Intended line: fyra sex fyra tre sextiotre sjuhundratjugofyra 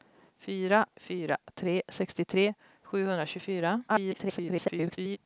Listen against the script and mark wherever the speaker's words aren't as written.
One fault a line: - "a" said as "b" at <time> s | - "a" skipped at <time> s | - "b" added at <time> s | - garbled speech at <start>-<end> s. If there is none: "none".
- "sex" skipped at 0.8 s
- garbled speech at 3.9-5.2 s